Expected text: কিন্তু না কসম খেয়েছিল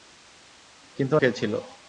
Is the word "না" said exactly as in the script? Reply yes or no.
no